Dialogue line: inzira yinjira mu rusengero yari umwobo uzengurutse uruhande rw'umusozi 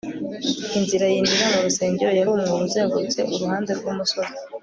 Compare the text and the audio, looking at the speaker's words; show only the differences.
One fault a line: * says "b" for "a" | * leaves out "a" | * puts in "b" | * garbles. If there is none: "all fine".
all fine